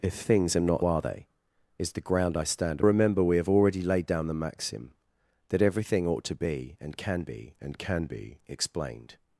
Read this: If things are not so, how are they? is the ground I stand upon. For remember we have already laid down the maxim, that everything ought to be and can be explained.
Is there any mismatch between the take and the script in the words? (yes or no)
yes